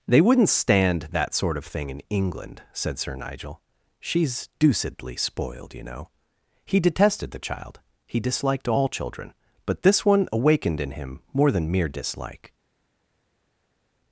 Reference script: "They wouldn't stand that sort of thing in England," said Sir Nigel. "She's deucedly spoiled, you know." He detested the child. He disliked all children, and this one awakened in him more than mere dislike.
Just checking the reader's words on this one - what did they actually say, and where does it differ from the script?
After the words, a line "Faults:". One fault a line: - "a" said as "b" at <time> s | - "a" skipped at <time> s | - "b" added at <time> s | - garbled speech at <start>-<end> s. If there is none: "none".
"They wouldn't stand that sort of thing in England," said Sir Nigel. "She's deucedly spoiled, you know." He detested the child. He disliked all children, but this one awakened in him more than mere dislike.
Faults:
- "and" said as "but" at 9.7 s